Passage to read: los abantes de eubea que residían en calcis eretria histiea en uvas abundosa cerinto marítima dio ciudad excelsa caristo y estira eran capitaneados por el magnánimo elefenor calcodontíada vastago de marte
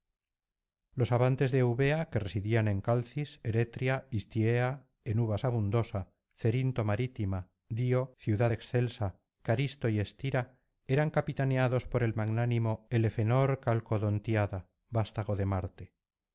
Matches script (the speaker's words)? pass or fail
pass